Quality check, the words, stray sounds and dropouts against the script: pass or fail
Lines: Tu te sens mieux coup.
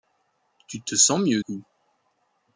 pass